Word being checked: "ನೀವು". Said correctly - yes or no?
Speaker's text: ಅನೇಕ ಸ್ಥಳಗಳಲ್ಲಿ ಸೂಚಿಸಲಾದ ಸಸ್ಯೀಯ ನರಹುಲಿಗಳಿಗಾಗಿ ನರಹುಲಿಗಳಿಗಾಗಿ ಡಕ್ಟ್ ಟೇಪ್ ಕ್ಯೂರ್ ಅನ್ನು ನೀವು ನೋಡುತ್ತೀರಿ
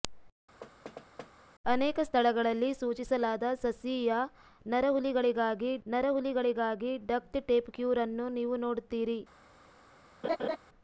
yes